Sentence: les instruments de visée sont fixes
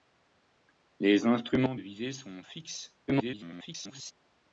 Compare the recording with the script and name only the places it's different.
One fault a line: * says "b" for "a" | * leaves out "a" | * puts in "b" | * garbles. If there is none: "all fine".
* leaves out "de"
* garbles